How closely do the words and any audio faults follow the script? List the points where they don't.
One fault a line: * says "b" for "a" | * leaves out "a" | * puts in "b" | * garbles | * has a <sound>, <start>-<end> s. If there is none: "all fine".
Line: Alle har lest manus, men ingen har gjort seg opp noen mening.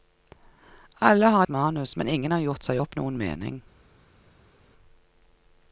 * leaves out "lest"